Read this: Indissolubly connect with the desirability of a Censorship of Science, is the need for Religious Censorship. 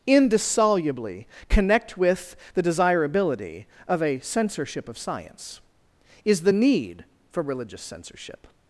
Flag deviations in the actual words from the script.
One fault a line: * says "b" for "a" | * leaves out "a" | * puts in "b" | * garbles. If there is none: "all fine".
all fine